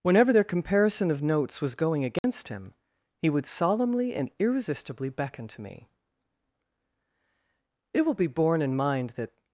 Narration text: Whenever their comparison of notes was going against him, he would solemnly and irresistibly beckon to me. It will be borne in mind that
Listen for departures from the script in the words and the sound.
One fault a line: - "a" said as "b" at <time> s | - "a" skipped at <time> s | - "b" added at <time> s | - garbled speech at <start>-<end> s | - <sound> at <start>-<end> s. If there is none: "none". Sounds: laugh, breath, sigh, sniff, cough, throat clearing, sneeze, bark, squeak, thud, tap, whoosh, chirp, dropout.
- dropout at 2.2-2.2 s